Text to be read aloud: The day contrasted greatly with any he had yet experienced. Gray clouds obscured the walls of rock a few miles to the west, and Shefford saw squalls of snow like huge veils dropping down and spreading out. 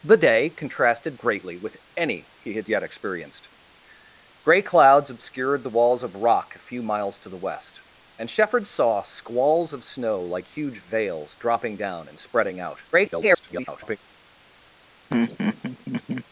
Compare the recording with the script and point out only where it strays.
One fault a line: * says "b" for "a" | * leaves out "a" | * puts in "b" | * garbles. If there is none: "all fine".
* garbles